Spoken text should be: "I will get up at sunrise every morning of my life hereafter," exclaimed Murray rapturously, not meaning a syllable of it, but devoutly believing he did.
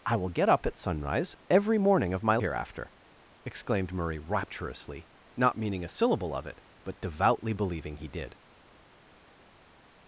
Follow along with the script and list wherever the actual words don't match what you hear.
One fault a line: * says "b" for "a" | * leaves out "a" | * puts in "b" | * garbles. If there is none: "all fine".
* leaves out "life"